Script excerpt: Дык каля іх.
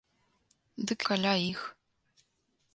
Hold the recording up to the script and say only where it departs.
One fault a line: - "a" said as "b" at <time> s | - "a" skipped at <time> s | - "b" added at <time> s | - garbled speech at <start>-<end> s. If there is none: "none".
none